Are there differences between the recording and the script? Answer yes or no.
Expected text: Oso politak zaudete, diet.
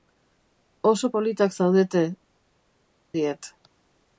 no